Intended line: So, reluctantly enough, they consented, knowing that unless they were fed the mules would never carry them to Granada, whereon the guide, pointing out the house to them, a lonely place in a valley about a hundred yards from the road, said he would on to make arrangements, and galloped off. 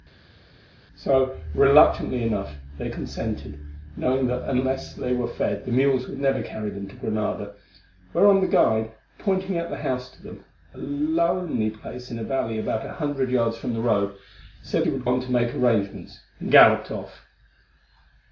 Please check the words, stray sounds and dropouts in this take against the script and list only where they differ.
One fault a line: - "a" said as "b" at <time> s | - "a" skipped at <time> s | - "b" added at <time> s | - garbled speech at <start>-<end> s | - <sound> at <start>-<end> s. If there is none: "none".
none